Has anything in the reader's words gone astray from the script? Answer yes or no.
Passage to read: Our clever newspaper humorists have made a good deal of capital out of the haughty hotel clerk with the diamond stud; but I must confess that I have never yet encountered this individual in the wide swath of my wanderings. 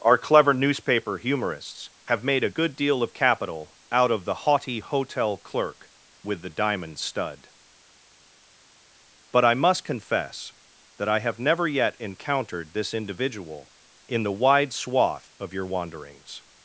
yes